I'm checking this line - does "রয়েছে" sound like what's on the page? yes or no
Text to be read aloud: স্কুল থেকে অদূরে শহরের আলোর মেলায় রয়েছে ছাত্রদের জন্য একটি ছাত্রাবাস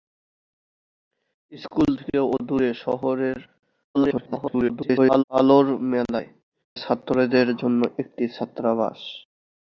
no